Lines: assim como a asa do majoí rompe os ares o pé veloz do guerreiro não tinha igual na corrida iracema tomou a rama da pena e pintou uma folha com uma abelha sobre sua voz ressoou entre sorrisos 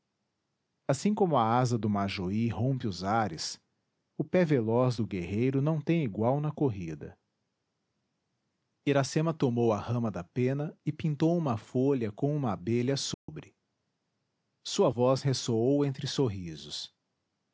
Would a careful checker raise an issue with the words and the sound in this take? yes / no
yes